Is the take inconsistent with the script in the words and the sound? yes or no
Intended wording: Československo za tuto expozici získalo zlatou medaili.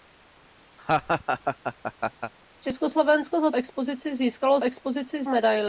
yes